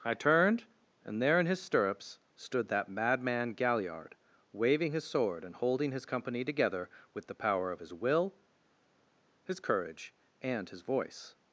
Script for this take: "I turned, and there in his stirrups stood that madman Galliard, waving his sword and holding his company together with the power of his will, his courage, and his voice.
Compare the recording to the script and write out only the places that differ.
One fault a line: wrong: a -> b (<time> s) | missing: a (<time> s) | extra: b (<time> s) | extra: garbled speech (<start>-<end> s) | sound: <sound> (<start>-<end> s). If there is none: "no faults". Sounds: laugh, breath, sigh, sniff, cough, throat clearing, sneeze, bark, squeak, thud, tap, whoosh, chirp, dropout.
no faults